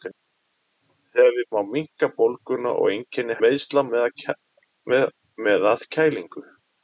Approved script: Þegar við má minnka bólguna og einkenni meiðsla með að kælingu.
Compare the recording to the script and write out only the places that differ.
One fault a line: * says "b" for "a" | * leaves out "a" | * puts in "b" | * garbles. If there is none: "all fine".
all fine